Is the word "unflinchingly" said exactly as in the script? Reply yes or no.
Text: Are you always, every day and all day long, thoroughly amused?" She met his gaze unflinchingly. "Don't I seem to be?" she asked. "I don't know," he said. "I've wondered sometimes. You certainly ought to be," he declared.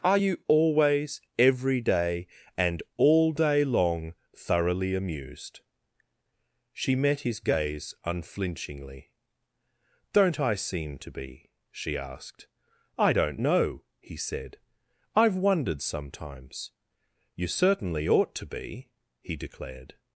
yes